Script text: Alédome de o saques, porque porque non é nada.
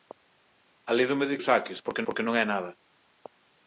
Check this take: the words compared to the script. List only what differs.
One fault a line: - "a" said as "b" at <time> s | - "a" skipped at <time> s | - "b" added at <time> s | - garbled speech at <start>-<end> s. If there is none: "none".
none